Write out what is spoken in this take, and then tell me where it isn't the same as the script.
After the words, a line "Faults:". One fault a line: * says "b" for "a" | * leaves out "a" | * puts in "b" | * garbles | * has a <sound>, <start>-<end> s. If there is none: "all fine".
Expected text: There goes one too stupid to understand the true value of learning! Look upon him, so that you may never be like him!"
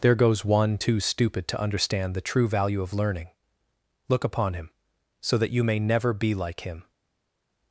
There goes one too stupid to understand the true value of learning! Look upon him, so that you may never be like him!"
Faults:
all fine